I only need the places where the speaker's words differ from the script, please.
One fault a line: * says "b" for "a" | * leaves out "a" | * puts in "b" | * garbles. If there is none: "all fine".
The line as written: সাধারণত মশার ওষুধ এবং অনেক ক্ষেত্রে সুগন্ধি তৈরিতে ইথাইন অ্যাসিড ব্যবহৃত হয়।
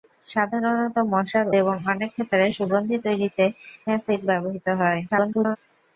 * leaves out "ওষুধ"
* leaves out "ইথাইন"
* garbles